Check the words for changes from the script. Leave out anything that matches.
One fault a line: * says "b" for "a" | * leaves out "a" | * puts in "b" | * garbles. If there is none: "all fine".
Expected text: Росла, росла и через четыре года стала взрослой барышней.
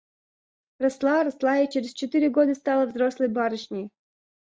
all fine